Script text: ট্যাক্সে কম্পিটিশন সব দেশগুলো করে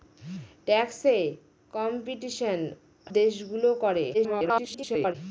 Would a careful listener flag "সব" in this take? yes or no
yes